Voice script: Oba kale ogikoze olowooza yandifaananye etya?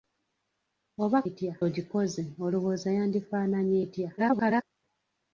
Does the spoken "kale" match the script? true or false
false